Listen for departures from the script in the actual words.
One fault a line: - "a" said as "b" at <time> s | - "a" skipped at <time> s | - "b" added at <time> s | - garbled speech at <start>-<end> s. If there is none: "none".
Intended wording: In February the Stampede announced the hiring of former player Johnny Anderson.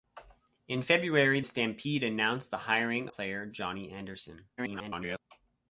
- "the" skipped at 1.4 s
- "of former" skipped at 3.1 s
- garbled speech at 4.6-5.2 s